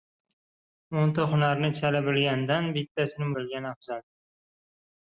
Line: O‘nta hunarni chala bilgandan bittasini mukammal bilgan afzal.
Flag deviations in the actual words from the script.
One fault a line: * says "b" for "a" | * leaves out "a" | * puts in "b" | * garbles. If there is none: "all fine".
* leaves out "mukammal"